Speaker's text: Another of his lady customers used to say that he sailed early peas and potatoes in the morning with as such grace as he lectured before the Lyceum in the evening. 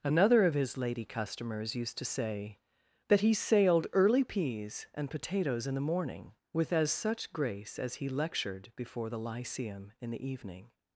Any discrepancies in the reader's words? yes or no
no